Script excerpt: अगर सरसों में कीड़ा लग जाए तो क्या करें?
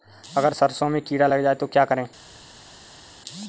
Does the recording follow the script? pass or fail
pass